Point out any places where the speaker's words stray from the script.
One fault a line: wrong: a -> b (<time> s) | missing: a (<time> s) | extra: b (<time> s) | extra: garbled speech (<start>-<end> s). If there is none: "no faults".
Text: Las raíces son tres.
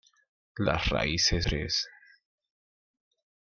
missing: son (1.5 s)